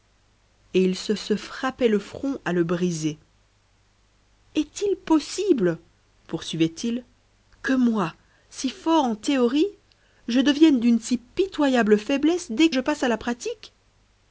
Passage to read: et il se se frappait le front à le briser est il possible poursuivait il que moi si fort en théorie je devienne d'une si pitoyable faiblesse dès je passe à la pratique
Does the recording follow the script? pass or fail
pass